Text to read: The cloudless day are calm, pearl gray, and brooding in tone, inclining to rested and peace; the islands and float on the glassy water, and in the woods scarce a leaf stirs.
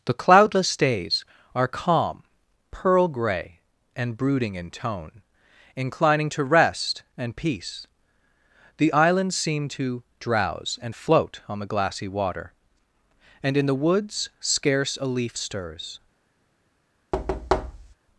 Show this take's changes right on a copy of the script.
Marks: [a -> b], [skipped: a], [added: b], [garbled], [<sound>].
The cloudless [day -> days] are calm, pearl gray, and brooding in tone, inclining to [rested -> rest] and peace; the islands [added: seem to drowse] and float on the glassy water, and in the woods scarce a leaf stirs. [thud]